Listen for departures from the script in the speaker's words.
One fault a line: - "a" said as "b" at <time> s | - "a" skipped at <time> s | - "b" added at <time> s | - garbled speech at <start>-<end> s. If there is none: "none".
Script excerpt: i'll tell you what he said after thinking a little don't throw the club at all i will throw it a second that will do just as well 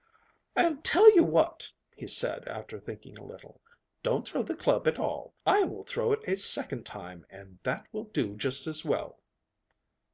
- "time and" added at 6.9 s